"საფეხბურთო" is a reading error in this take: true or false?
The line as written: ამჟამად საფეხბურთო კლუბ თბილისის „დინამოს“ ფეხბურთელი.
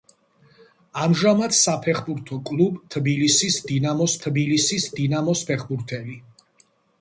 false